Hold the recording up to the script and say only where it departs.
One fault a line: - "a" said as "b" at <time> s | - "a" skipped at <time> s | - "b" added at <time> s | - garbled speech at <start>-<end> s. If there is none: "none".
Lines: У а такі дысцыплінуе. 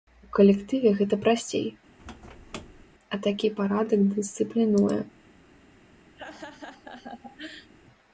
- "калектыве гэта прасцей" added at 0.4 s
- "парадак" added at 3.6 s